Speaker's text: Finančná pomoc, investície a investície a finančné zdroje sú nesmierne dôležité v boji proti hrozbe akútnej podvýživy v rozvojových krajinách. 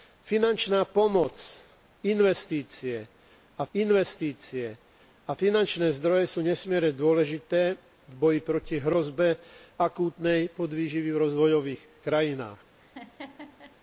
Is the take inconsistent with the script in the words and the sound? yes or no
yes